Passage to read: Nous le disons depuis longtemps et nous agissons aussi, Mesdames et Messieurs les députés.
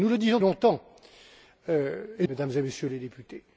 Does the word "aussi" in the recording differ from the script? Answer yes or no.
yes